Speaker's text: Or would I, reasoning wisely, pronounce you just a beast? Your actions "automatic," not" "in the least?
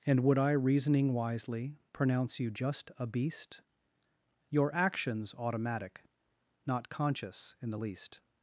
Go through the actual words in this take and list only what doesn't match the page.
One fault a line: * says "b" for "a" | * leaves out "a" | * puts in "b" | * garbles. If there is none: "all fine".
* says "And" for "Or"
* puts in "conscious"